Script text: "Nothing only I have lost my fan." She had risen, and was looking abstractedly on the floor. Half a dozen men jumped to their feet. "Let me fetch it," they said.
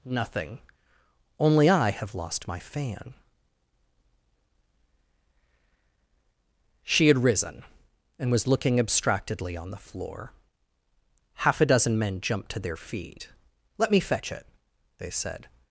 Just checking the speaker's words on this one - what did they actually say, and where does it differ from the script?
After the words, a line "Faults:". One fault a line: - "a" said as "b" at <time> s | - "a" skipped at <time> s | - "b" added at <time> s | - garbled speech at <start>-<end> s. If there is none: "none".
"Nothing only I have lost my fan." She had risen, and was looking abstractedly on the floor. Half a dozen men jumped to their feet. "Let me fetch it," they said.
Faults:
none